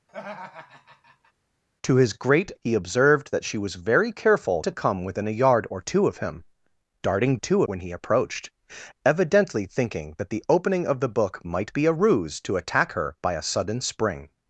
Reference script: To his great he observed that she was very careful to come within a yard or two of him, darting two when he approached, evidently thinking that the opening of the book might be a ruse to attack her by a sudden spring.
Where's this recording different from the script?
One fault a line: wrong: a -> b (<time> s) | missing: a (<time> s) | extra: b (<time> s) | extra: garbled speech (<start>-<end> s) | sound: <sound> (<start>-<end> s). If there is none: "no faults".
sound: laugh (0.1-1.3 s)